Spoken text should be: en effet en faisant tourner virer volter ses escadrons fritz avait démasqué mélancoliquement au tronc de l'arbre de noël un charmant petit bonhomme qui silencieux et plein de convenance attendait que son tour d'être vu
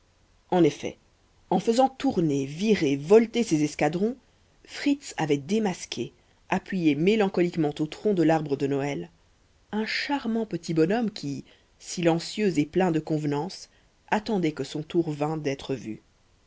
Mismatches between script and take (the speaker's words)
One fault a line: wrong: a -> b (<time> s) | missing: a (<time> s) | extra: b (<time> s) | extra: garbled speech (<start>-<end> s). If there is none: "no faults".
extra: appuyé (6.5 s)
extra: vînt (15.1 s)